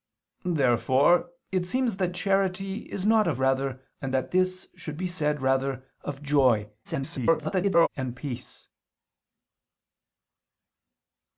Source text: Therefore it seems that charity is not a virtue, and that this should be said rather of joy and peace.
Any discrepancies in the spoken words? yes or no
yes